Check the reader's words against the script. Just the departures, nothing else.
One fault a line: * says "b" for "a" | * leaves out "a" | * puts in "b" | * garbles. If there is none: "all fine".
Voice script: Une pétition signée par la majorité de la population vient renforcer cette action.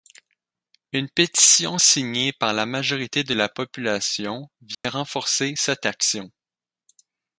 all fine